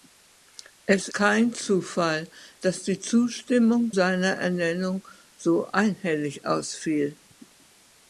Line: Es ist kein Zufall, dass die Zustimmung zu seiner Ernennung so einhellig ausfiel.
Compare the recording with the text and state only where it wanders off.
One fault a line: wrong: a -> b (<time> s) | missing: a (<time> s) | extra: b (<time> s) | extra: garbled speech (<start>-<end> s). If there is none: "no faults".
missing: ist (1.1 s)
missing: zu (3.9 s)